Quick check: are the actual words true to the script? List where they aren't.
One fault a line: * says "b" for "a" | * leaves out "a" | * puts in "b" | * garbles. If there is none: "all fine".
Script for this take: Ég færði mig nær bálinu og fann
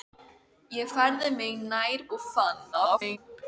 * leaves out "bálinu"
* garbles